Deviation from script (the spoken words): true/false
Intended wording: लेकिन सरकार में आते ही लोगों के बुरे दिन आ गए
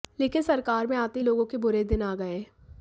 false